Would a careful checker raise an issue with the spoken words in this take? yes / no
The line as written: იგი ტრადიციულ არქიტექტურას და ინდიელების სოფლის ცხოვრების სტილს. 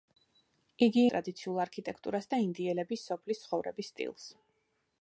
no